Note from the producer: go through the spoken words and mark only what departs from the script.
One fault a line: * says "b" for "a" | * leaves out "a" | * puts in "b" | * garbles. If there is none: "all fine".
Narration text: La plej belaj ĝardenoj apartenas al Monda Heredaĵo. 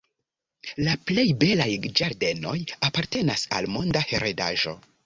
all fine